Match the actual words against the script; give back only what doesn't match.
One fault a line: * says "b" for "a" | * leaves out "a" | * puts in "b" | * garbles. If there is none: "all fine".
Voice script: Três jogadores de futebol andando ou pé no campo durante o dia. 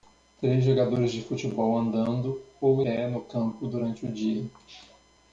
all fine